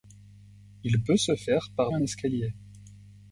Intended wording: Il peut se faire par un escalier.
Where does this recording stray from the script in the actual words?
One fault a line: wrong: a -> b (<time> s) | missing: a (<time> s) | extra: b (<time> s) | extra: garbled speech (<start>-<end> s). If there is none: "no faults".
no faults